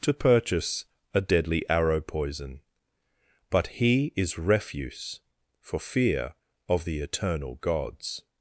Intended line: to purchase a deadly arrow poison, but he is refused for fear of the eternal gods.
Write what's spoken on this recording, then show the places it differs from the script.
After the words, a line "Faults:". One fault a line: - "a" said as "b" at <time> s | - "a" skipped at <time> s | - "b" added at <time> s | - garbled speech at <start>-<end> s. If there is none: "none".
to purchase a deadly arrow poison, but he is refuse for fear of the eternal gods.
Faults:
- "refused" said as "refuse" at 4.4 s